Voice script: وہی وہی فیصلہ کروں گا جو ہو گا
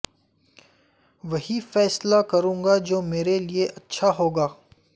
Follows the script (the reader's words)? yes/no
no